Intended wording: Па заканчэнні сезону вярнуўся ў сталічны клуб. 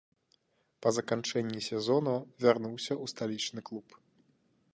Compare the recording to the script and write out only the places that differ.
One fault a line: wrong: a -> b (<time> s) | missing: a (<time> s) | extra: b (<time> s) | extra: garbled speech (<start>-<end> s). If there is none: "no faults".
no faults